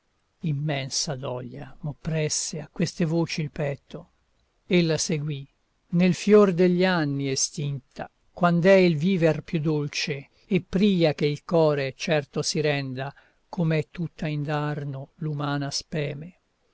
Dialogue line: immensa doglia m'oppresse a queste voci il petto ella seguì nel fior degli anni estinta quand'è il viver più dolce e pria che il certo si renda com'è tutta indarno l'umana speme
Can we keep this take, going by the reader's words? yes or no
no